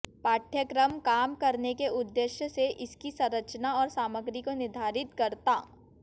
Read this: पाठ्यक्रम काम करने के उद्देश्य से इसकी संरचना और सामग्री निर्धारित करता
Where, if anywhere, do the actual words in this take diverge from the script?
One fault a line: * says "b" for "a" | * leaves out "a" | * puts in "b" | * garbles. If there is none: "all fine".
* puts in "को"